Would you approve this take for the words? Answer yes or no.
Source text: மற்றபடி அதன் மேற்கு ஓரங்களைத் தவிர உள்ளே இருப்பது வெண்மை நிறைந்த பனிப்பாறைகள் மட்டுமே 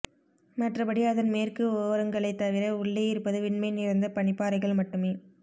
yes